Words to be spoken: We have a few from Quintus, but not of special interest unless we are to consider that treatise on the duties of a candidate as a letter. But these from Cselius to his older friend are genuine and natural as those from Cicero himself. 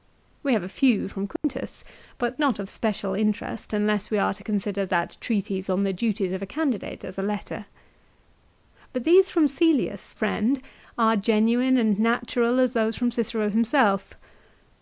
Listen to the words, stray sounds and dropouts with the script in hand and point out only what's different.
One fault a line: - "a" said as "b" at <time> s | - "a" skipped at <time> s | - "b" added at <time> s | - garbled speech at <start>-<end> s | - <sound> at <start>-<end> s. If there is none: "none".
- dropout at 1.4-1.4 s
- "to his older" skipped at 10.2 s